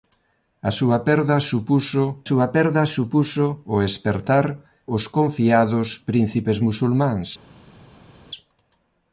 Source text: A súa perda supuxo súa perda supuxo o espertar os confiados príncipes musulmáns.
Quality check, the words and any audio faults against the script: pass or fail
pass